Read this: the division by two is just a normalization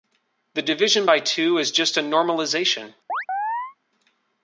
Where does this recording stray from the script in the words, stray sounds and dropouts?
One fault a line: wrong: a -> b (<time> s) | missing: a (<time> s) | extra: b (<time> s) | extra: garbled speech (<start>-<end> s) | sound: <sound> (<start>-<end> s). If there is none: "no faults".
sound: chirp (3.1-3.8 s)